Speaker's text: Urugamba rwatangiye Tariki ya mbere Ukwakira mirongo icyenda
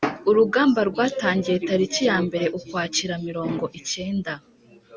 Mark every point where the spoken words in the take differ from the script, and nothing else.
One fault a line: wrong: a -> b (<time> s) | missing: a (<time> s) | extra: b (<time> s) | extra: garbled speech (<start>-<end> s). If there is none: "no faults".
no faults